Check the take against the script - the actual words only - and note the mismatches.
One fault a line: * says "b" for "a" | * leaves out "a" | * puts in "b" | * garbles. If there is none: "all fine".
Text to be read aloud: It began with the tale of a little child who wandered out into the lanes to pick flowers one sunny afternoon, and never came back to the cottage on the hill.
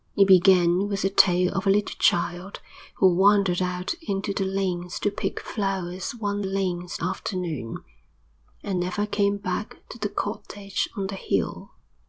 * says "lanes" for "sunny"